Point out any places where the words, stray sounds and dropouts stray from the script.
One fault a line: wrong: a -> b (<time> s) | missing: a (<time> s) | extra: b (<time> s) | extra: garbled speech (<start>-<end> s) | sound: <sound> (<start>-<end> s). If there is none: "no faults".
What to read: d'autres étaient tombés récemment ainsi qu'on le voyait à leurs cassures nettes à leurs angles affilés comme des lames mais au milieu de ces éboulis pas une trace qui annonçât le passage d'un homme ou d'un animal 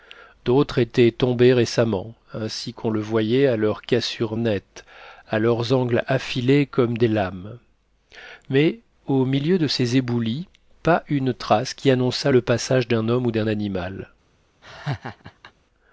sound: laugh (14.6-15.5 s)